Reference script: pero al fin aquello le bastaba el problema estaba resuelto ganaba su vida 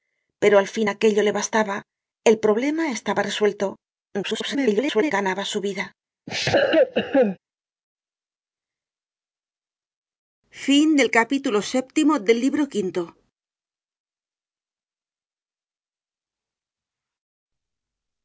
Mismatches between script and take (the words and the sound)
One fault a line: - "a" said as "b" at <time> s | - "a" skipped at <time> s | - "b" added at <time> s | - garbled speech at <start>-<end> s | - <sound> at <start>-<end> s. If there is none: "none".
- garbled speech at 4.2-5.1 s
- cough at 6.3-7.4 s